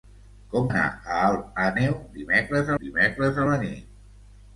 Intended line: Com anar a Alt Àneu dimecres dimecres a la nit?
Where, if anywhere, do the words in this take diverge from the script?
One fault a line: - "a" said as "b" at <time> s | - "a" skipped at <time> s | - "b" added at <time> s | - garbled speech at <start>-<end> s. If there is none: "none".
none